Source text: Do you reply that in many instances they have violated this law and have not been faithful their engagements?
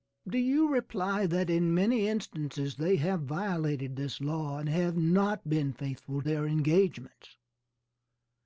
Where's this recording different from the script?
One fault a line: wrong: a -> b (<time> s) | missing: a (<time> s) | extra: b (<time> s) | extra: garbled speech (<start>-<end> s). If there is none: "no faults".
no faults